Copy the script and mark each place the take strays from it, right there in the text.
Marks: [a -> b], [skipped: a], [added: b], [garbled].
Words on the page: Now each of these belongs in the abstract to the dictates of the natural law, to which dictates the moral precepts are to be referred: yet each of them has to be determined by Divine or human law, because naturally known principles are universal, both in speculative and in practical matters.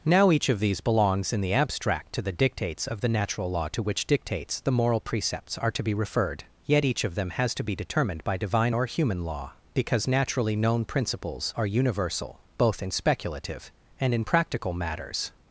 Now each of these belongs in the abstract to the dictates of the natural law, to which dictates the moral precepts are to be referred: yet each of them has to be determined by Divine or human law, because naturally known principles are universal, both in speculative and in practical matters.